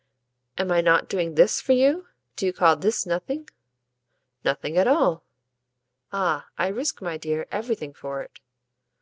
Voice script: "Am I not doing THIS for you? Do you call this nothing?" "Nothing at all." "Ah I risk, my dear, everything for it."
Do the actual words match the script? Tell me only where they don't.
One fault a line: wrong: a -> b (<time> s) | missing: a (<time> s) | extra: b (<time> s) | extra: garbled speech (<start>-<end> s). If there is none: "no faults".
no faults